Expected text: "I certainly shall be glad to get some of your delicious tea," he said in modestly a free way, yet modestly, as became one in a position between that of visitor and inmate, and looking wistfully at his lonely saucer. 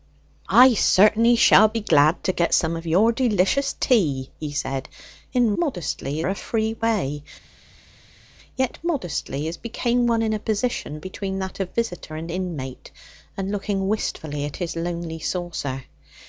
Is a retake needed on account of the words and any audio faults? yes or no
no